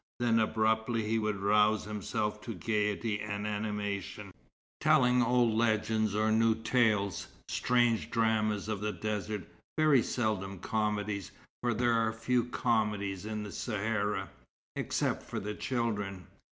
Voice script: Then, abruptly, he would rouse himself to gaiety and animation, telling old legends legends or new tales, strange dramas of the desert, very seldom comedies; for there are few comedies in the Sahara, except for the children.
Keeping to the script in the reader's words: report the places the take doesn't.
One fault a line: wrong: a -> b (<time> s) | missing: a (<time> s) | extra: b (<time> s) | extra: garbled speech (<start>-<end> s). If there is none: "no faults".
missing: legends (6.1 s)